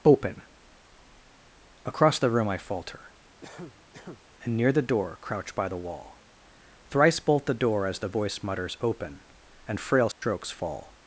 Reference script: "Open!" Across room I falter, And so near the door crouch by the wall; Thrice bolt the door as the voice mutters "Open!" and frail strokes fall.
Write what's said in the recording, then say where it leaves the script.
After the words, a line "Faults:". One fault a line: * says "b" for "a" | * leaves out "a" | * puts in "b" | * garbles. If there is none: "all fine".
"Open!" Across the room I falter, And near the door crouch by the wall; Thrice bolt the door as the voice mutters "Open!" and frail strokes fall.
Faults:
* puts in "the"
* leaves out "so"